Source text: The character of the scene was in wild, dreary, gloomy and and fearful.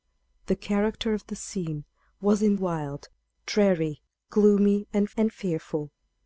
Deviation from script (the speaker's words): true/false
false